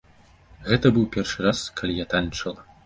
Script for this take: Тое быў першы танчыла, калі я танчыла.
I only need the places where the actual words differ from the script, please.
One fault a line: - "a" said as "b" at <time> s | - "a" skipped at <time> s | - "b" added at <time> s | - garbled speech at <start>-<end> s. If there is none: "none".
- "Тое" said as "Гэта" at 0.7 s
- "танчыла" said as "раз" at 1.5 s